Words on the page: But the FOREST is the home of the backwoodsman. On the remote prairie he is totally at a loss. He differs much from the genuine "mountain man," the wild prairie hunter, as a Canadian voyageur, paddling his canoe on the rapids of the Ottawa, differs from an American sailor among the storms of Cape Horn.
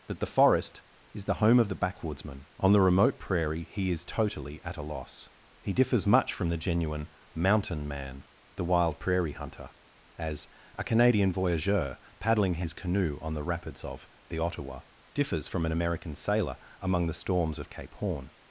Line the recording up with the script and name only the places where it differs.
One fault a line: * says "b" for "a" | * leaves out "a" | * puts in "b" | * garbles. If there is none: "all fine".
* says "That" for "But"